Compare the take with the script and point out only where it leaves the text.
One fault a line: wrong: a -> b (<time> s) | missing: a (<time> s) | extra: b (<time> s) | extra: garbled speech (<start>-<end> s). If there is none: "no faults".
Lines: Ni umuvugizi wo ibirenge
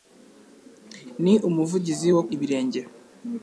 no faults